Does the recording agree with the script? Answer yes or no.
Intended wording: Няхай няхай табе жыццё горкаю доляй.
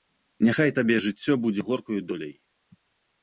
no